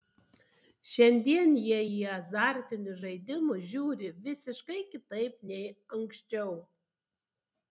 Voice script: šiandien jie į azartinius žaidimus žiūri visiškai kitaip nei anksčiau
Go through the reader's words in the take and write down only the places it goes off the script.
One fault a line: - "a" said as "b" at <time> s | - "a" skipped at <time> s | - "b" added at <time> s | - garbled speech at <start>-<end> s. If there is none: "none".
none